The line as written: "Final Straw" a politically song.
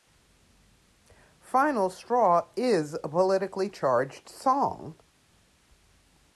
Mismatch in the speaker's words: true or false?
true